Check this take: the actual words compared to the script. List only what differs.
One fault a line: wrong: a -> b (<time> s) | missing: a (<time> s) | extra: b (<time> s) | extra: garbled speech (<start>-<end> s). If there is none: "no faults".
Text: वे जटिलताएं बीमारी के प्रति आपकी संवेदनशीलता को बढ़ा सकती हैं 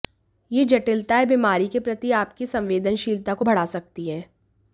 wrong: वे -> ये (0.5 s)